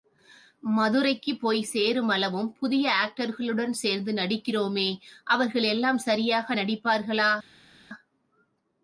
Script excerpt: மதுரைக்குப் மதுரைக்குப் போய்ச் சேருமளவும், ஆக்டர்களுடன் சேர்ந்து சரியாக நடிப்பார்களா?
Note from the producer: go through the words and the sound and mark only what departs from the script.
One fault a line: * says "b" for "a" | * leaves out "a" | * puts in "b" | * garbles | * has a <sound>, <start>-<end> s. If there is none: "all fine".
* leaves out "மதுரைக்குப்"
* puts in "புதிய"
* puts in "நடிக்கிறோமே அவர்கள் எல்லாம்"